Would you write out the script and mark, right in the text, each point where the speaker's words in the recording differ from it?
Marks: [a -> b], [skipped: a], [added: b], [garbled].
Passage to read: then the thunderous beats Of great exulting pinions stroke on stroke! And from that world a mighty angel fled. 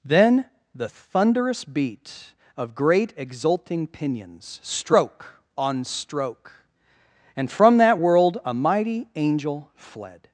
then the thunderous [beats -> beat] Of great exulting pinions stroke on stroke! And from that world a mighty angel fled.